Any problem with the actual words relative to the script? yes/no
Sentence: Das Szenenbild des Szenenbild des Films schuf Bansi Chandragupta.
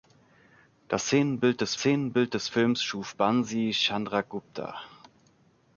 no